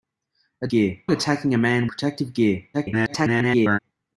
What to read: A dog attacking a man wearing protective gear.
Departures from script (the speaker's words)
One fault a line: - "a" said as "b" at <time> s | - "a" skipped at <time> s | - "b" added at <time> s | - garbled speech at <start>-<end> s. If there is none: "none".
- "dog" said as "gear" at 0.7 s
- "wearing" skipped at 1.9 s
- garbled speech at 2.7-3.8 s